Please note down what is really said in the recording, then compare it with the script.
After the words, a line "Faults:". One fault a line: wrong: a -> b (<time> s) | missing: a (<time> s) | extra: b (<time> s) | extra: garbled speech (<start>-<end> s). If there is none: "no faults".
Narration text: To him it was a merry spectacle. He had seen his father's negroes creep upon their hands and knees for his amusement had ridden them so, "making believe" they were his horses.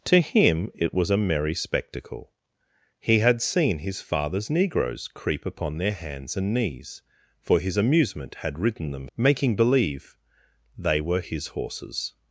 To him it was a merry spectacle. He had seen his father's negroes creep upon their hands and knees for his amusement had ridden them "making believe" they were his horses.
Faults:
missing: so (9.1 s)